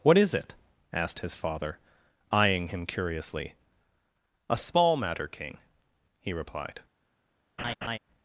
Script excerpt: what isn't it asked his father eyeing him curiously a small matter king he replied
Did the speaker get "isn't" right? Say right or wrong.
wrong